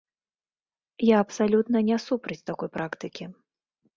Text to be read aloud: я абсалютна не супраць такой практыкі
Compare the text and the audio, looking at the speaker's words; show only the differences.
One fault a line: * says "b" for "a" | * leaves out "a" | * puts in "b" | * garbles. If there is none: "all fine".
all fine